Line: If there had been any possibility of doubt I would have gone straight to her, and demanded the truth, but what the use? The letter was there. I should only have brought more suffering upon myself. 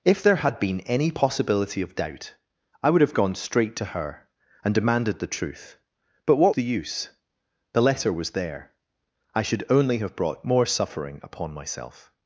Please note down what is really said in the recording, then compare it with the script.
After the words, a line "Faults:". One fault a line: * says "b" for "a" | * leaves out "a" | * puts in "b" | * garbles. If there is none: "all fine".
If there had been any possibility of doubt I would have gone straight to her, and demanded the truth, but what the use? The letter was there. I should only have brought more suffering upon myself.
Faults:
all fine